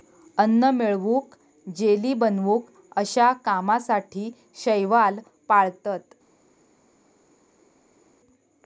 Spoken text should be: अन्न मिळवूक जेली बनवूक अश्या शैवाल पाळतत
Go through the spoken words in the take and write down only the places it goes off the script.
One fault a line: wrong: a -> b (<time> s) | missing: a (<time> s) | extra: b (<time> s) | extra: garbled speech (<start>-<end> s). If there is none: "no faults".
extra: कामासाठी (3.5 s)